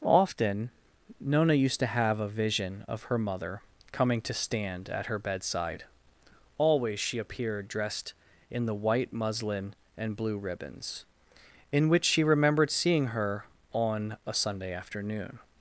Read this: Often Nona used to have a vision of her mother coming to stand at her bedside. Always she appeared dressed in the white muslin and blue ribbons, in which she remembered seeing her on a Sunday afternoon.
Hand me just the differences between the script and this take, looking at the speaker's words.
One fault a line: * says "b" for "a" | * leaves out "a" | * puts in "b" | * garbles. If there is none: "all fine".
all fine